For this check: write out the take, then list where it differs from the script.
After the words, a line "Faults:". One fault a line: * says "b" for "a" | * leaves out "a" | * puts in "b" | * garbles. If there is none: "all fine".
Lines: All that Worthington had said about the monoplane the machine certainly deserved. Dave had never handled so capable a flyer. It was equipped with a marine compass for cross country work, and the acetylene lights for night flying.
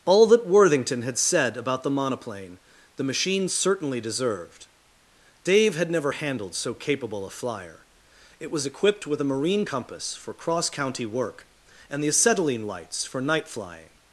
All that Worthington had said about the monoplane the machine certainly deserved. Dave had never handled so capable a flyer. It was equipped with a marine compass for cross county work, and the acetylene lights for night flying.
Faults:
* says "county" for "country"